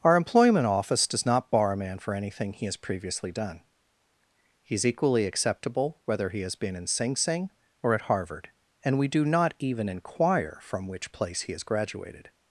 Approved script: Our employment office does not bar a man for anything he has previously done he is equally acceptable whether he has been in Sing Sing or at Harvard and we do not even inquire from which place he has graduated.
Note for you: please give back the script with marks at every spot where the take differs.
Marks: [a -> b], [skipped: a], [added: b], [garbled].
Our employment office does not bar a man for anything he has previously done he is equally acceptable whether he has been in Sing Sing or at Harvard and we do not even inquire from which place he has graduated.